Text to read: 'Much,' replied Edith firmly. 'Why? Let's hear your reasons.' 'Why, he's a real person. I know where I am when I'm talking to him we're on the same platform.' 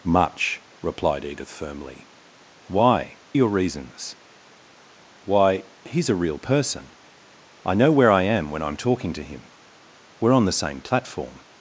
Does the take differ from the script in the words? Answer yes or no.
yes